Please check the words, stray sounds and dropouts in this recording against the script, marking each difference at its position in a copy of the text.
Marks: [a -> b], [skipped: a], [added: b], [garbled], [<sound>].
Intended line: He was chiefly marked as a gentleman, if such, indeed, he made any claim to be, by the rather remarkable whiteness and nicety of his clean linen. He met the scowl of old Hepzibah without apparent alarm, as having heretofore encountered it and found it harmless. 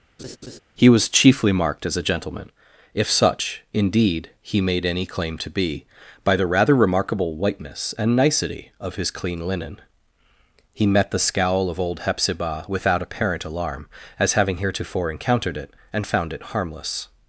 [laugh] He was chiefly marked as a gentleman, if such, indeed, he made any claim to be, by the rather remarkable whiteness and nicety of his clean linen. He met the scowl of old Hepzibah without apparent alarm, as having heretofore encountered it and found it harmless.